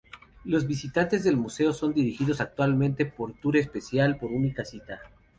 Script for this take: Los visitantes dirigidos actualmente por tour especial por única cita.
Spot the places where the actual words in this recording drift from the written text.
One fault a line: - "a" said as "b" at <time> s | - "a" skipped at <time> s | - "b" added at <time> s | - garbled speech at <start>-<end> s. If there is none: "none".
- "del museo son" added at 1.2 s